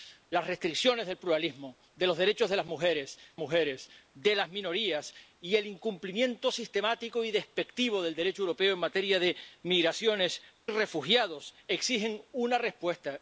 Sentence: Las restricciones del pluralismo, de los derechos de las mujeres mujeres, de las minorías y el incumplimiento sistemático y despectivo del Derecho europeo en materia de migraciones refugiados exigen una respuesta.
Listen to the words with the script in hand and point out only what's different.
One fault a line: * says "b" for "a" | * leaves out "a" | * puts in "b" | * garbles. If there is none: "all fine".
all fine